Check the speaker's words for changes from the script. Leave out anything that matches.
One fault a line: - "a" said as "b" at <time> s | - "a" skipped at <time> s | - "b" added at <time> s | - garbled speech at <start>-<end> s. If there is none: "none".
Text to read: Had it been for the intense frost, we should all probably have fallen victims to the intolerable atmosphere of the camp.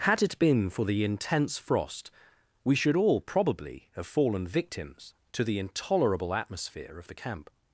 none